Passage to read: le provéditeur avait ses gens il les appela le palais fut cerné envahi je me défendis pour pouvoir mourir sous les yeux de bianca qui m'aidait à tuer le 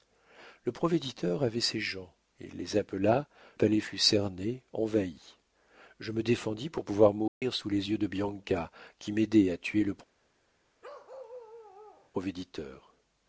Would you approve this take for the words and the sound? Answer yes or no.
no